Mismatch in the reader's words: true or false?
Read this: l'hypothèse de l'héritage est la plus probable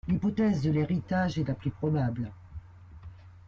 false